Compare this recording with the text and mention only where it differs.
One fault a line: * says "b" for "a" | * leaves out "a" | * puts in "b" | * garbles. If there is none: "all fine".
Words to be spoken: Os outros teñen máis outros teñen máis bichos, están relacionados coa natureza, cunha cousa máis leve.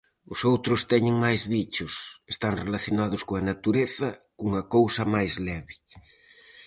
* leaves out "outros teñen máis"